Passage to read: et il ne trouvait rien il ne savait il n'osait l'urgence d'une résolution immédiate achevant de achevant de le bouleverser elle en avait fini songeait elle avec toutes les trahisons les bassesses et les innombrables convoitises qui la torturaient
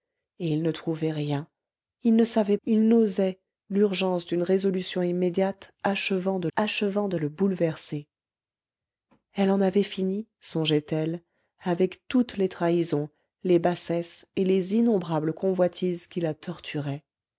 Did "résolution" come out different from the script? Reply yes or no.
no